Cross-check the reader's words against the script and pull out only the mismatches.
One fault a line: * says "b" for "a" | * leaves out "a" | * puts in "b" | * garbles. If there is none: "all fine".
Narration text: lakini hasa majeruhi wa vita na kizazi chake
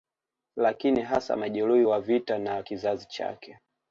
all fine